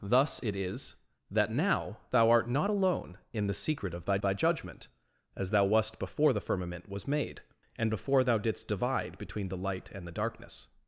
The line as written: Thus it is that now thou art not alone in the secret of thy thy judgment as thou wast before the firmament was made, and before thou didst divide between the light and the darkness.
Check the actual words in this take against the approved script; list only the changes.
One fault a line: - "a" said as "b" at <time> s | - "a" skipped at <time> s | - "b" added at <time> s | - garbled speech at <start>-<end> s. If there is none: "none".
none